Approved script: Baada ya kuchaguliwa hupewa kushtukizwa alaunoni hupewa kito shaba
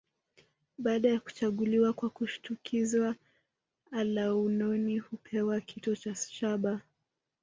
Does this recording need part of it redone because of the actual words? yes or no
yes